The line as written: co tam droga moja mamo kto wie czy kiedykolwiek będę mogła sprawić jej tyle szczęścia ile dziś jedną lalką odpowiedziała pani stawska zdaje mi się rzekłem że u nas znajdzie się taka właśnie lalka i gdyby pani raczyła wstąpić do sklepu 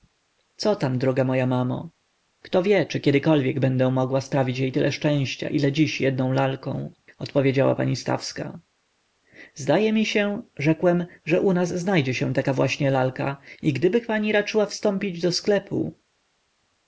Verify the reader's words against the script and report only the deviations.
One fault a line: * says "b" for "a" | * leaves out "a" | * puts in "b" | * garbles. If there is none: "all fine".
all fine